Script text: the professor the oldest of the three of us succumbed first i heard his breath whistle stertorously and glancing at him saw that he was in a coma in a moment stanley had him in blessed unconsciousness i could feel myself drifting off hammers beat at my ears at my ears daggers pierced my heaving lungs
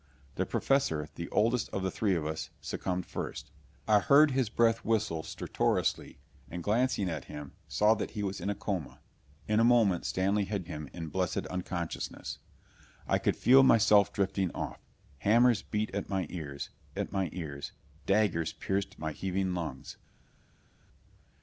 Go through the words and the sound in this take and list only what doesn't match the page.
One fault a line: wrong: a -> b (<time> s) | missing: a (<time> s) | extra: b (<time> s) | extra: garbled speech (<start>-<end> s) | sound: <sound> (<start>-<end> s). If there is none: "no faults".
no faults